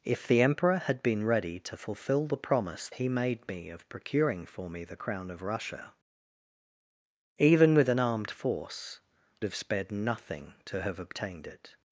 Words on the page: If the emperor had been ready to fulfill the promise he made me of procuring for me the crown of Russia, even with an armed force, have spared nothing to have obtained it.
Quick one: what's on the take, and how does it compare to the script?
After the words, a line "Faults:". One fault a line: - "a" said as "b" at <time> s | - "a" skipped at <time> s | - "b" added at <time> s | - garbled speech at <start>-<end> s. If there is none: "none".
If the emperor had been ready to fulfill the promise he made me of procuring for me the crown of Russia, even with an armed force, have spared nothing to have obtained it.
Faults:
none